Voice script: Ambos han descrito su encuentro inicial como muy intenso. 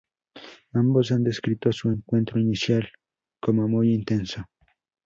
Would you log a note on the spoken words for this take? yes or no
no